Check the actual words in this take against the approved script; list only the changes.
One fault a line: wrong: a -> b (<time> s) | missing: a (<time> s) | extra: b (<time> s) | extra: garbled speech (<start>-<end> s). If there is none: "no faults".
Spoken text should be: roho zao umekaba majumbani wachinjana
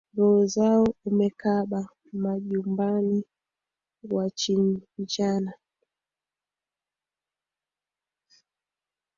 no faults